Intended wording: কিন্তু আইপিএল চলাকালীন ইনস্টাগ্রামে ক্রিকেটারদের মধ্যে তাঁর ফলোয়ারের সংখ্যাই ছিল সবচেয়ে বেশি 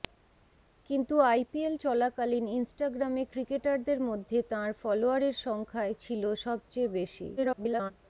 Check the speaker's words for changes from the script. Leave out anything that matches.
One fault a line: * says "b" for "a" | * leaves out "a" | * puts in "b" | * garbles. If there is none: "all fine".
* garbles